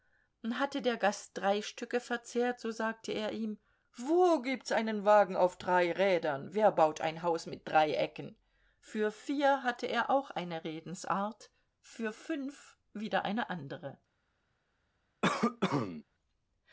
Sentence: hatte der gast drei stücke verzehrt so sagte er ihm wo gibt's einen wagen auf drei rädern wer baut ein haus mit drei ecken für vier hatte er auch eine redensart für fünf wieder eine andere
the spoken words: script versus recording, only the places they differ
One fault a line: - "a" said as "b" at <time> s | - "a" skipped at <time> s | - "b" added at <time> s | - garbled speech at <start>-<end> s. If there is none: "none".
none